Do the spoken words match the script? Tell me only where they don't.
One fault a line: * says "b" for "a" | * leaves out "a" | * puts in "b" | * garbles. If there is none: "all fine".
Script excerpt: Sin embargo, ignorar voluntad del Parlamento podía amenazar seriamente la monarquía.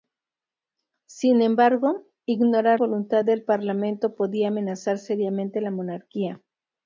all fine